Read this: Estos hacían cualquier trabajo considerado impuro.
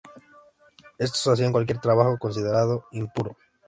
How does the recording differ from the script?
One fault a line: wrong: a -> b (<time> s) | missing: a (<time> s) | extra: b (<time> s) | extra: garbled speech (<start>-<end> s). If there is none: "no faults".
no faults